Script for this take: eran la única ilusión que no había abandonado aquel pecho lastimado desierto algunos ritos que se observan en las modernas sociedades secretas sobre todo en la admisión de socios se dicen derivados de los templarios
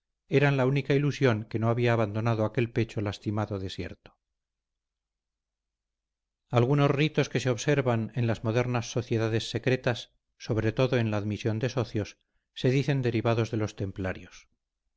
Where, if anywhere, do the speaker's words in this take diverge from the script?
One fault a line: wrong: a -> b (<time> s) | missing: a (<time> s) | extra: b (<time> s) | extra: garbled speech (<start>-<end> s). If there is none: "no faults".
no faults